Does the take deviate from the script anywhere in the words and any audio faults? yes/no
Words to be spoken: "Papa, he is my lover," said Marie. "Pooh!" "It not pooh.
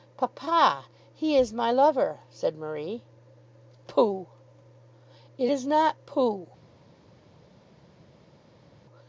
yes